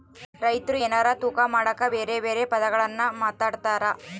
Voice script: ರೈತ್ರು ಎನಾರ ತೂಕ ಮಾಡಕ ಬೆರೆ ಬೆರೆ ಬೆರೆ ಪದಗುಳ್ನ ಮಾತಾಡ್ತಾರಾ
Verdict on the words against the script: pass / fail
fail